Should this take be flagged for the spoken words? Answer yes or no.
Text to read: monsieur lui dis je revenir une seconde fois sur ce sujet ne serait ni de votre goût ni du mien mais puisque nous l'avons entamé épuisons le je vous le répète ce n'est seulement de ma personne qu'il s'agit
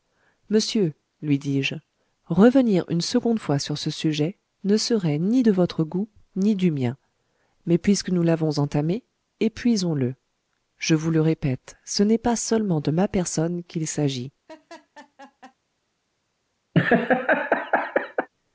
yes